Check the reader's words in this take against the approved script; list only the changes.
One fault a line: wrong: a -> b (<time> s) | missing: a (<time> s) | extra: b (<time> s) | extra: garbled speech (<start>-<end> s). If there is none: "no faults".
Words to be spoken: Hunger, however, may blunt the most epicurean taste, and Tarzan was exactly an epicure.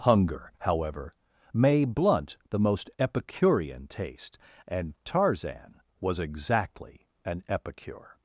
no faults